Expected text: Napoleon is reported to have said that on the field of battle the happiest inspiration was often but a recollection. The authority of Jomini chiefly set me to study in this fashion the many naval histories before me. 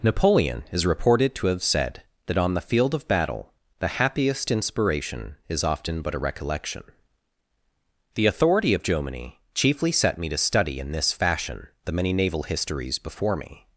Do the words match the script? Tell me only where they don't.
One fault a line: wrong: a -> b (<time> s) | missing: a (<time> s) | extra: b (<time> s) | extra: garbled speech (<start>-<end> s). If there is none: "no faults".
wrong: was -> is (5.5 s)